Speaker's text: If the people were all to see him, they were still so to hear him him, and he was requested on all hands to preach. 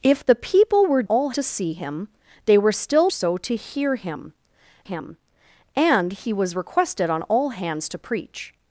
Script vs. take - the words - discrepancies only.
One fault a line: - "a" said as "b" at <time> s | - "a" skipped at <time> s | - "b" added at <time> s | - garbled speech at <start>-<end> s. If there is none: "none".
none